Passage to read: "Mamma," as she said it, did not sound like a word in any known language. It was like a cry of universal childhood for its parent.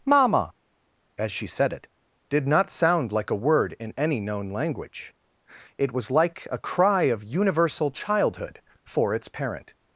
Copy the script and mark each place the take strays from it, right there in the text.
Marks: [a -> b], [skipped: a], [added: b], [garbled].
"Mamma," as she said it, did not sound like a word in any known language. It was like a cry of universal childhood for its parent.